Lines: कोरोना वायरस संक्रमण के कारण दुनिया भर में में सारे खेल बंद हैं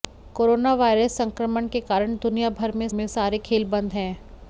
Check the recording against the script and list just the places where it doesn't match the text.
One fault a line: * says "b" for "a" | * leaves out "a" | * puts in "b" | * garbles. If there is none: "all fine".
all fine